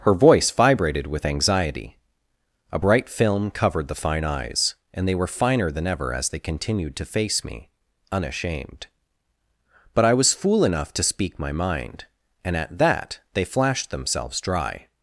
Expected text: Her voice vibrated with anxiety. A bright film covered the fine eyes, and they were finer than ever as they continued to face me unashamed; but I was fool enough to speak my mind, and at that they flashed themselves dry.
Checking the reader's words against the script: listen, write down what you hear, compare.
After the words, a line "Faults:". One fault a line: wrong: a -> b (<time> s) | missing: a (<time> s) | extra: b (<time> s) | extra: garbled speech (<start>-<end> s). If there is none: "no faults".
Her voice vibrated with anxiety. A bright film covered the fine eyes, and they were finer than ever as they continued to face me unashamed; but I was fool enough to speak my mind, and at that they flashed themselves dry.
Faults:
no faults